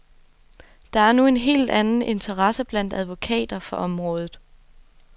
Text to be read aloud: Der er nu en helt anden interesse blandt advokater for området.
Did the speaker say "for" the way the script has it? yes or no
yes